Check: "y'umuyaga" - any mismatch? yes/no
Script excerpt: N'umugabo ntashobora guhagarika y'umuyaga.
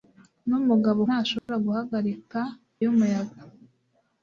no